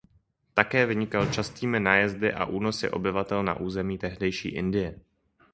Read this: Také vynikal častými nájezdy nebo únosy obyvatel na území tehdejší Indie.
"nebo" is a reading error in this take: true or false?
true